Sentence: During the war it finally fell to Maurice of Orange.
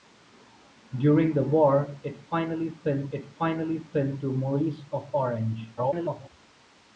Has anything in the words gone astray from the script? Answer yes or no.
yes